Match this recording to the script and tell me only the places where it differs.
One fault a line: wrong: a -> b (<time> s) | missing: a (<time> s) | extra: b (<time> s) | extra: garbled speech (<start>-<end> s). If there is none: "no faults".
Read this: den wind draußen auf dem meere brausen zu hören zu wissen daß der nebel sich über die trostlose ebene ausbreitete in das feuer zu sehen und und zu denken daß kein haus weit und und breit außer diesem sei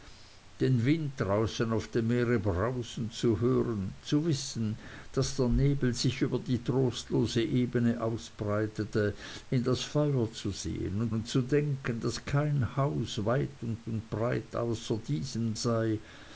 no faults